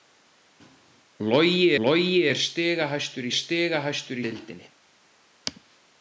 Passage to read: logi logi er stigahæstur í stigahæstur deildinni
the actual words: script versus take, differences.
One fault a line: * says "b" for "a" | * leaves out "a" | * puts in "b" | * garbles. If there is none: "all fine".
all fine